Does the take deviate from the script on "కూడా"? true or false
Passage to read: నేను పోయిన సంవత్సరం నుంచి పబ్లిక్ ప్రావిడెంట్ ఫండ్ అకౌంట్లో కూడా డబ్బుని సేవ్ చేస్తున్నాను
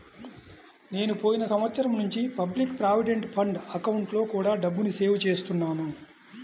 false